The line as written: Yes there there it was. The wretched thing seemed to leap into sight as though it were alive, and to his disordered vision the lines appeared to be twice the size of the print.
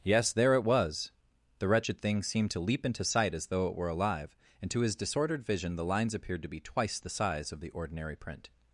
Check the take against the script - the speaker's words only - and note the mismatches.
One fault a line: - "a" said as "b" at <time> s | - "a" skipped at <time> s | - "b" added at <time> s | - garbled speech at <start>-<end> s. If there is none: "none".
- "there" skipped at 0.6 s
- "ordinary" added at 7.7 s